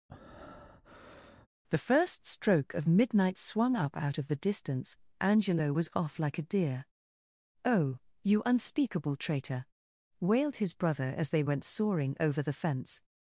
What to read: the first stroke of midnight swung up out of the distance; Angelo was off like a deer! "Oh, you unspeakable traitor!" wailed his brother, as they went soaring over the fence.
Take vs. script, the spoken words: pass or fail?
pass